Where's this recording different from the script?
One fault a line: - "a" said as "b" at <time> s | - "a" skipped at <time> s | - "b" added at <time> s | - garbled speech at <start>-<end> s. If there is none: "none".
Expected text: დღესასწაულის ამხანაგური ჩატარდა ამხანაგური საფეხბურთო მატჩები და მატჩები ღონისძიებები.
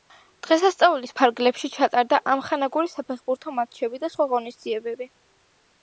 - "ამხანაგური" said as "ფარგლებში" at 1.2 s
- "მატჩები" said as "სხვა" at 4.1 s